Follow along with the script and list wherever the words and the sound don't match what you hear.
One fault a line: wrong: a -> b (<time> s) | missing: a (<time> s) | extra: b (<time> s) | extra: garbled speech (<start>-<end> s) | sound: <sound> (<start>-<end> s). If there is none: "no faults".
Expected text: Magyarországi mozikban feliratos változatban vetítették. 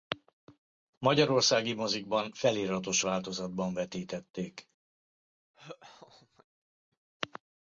sound: laugh (5.5-6.5 s)